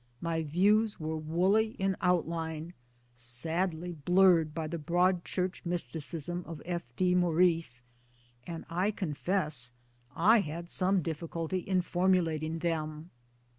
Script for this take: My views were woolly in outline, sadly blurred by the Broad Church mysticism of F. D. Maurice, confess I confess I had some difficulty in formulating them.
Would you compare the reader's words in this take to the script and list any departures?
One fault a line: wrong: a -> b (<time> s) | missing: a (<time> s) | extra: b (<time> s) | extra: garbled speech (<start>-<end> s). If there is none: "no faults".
wrong: confess -> and (8.5 s)